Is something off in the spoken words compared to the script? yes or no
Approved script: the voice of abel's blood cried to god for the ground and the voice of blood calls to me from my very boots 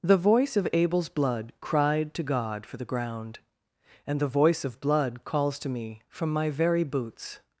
no